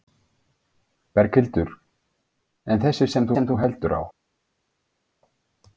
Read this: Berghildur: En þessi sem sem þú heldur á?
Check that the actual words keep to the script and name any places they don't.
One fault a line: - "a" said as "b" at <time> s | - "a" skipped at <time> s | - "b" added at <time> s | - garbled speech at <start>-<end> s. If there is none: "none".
none